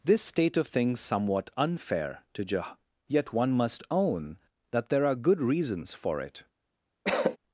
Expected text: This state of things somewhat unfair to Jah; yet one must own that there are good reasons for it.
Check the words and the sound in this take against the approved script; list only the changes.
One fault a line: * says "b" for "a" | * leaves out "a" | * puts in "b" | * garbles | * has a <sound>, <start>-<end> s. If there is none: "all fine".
* has a cough, 7.0-7.4 s